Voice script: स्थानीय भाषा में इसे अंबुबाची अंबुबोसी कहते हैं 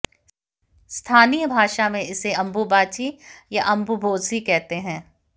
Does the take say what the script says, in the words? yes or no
no